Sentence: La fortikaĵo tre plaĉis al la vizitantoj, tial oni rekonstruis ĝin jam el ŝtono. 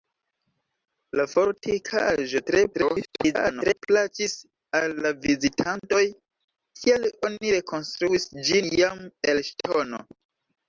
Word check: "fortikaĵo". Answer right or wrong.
right